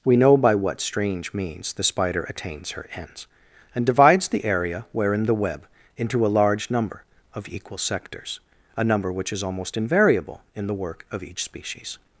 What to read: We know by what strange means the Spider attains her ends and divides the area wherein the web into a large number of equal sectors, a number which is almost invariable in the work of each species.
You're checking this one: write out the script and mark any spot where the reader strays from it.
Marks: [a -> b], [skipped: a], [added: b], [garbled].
We know by what strange means the Spider attains her ends and divides the area wherein the web into a large number of equal sectors, a number which is almost invariable in the work of each species.